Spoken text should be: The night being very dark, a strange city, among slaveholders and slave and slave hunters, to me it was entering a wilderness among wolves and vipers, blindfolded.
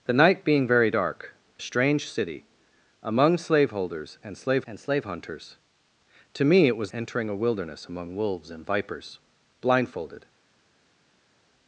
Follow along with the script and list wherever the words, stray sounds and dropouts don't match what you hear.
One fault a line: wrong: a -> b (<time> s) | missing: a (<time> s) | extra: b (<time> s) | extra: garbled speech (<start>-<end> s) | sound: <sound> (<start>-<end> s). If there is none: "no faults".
no faults